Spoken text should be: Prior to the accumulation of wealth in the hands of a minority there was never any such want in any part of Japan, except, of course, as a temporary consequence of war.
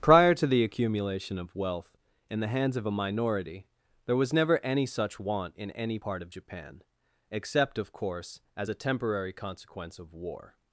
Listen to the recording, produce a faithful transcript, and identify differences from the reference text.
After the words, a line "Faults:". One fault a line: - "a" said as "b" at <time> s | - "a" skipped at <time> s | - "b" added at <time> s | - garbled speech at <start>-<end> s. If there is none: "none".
Prior to the accumulation of wealth in the hands of a minority there was never any such want in any part of Japan, except, of course, as a temporary consequence of war.
Faults:
none